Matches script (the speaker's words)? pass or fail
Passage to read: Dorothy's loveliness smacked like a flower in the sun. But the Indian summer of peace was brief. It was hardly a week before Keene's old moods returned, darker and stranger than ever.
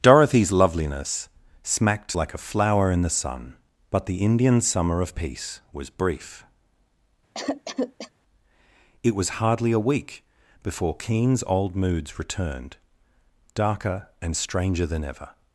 pass